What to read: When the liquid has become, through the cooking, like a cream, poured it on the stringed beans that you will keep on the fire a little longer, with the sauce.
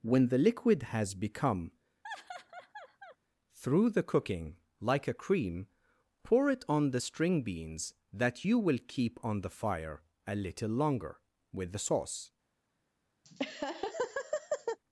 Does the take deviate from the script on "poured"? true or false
true